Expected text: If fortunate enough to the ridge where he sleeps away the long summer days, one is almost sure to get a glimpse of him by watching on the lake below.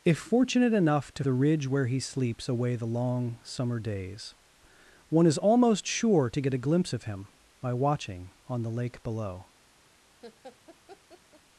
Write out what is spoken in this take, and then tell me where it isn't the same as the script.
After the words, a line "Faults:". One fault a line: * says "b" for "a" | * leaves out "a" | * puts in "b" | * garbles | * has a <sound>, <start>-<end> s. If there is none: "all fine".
If fortunate enough to the ridge where he sleeps away the long summer days, one is almost sure to get a glimpse of him by watching on the lake below.
Faults:
* has a laugh, 10.2-11.4 s